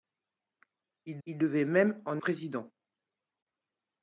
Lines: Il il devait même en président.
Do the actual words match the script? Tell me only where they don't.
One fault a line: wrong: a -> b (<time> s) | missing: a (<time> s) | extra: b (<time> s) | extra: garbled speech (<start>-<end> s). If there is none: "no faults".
no faults